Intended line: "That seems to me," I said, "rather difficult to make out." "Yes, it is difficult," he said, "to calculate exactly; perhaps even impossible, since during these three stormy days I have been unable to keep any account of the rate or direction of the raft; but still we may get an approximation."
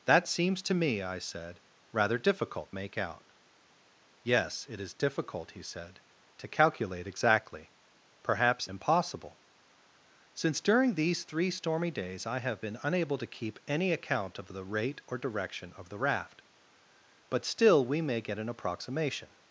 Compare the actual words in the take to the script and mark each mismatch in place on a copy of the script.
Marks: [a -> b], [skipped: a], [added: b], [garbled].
"That seems to me," I said, "rather difficult [skipped: to] make out." "Yes, it is difficult," he said, "to calculate exactly; perhaps [skipped: even] impossible, since during these three stormy days I have been unable to keep any account of the rate or direction of the raft; but still we may get an approximation."